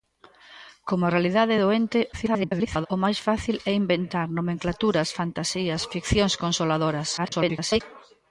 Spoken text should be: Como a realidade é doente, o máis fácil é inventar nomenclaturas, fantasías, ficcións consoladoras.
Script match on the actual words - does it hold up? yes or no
no